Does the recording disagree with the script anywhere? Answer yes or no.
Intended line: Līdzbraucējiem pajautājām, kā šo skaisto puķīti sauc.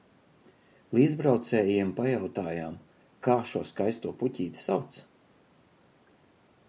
no